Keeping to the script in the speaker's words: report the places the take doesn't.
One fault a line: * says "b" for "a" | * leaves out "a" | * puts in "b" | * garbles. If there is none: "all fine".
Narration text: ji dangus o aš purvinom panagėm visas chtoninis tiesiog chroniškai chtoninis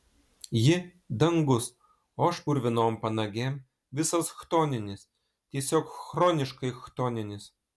all fine